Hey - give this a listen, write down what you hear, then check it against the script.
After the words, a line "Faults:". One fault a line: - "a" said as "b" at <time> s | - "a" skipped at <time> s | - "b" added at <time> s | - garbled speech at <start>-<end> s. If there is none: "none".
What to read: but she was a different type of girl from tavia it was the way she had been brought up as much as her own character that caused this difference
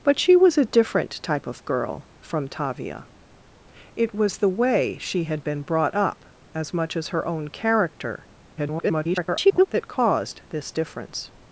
but she was a different type of girl from tavia it was the way she had been brought up as much as her own character [garbled] that caused this difference
Faults:
- garbled speech at 8.6-9.7 s